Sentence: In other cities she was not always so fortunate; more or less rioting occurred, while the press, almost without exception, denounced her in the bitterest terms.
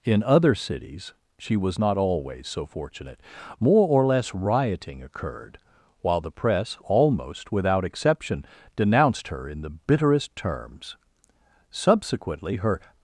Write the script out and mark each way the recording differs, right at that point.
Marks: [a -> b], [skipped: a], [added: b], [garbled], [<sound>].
In other cities she was not always so fortunate; more or less rioting occurred, while the press, almost without exception, denounced her in the bitterest terms. [added: Subsequently her]